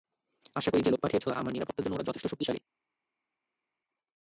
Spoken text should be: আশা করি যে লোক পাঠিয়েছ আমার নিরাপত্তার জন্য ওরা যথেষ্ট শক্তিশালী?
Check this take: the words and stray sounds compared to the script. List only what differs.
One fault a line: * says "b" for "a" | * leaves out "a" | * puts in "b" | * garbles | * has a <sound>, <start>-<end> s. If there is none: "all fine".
all fine